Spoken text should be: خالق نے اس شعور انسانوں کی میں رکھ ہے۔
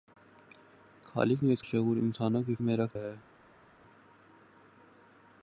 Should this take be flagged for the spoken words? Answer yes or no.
no